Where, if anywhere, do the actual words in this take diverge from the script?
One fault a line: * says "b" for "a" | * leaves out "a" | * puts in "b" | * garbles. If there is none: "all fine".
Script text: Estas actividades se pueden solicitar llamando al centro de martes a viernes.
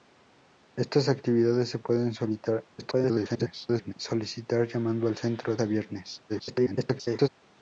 * garbles
* leaves out "de martes"
* garbles